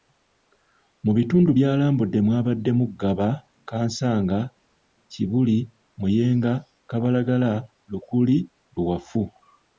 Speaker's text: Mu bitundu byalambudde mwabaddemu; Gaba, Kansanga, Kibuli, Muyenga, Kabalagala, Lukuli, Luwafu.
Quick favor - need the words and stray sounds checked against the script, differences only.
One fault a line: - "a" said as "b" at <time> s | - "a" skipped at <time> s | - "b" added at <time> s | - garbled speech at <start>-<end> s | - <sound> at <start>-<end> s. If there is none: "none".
none